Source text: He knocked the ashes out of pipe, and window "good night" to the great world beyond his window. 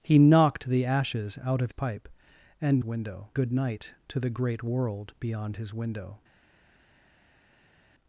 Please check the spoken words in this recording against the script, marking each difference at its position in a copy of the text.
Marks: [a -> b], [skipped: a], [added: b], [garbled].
He knocked the ashes out of pipe, and window "good night" to the great world beyond his window.